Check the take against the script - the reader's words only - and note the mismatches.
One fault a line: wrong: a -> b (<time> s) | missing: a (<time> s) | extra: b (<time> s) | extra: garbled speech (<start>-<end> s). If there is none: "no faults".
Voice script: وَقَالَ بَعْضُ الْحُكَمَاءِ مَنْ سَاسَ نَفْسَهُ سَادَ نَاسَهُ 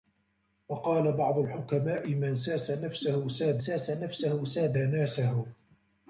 extra: سَاسَ نَفْسَهُ سَادَ (3.6 s)